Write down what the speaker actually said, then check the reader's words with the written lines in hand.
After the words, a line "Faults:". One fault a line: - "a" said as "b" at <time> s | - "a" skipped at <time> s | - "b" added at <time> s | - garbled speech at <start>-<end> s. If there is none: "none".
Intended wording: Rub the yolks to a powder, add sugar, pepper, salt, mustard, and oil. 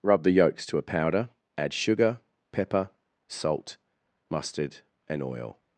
Rub the yolks to a powder, add sugar, pepper, salt, mustard, and oil.
Faults:
none